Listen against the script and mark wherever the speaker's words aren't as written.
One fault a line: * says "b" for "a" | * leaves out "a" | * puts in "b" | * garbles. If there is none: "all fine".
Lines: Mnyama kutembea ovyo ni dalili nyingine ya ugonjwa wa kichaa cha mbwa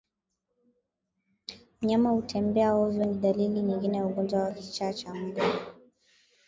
all fine